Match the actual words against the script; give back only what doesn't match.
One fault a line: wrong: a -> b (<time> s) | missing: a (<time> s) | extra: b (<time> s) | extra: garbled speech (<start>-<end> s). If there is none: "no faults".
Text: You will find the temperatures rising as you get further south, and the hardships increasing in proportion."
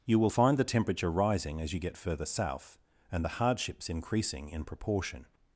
wrong: temperatures -> temperature (0.6 s)